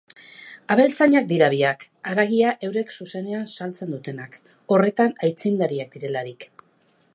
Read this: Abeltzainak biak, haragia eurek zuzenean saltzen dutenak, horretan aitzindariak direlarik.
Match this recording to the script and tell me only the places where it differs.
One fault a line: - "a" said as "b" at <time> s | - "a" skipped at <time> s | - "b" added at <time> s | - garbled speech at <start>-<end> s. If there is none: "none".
- "dira" added at 1.3 s